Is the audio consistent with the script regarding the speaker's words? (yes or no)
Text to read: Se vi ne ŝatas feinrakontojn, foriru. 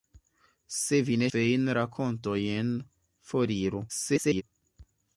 no